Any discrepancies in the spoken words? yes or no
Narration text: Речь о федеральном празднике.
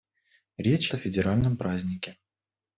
no